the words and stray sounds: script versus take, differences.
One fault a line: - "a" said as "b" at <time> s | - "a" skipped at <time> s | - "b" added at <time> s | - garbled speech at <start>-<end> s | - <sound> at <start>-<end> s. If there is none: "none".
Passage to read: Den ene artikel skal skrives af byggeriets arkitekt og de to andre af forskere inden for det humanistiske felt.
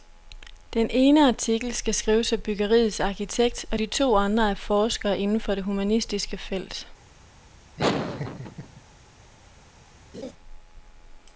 - laugh at 7.8-8.8 s
- laugh at 10.1-10.3 s